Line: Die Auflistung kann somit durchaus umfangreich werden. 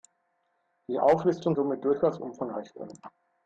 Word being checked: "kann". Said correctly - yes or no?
no